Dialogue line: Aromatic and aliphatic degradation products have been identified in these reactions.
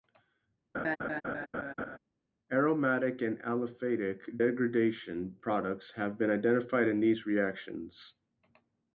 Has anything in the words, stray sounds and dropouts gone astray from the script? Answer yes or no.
yes